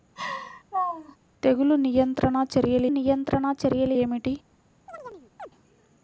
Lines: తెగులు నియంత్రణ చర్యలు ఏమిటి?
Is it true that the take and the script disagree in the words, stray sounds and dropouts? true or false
true